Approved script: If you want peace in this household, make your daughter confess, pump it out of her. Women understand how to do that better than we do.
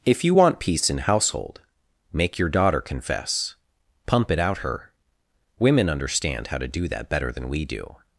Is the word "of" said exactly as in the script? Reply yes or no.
no